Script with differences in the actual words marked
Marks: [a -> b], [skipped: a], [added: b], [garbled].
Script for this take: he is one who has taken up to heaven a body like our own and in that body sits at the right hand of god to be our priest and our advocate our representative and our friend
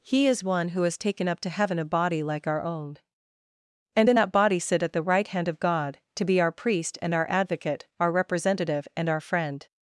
he is one who has taken up to heaven a body like our own and in that body [sits -> sit] at the right hand of god to be our priest and our advocate our representative and our friend